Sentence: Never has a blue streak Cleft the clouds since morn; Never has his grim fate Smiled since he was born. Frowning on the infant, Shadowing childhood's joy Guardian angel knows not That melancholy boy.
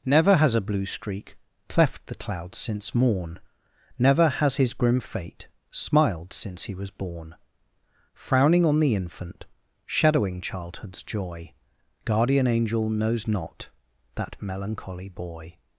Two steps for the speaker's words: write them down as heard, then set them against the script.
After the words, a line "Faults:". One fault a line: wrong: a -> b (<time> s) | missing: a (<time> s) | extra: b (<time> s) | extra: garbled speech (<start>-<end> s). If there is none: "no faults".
Never has a blue streak Cleft the clouds since morn; Never has his grim fate Smiled since he was born. Frowning on the infant, Shadowing childhood's joy Guardian angel knows not That melancholy boy.
Faults:
no faults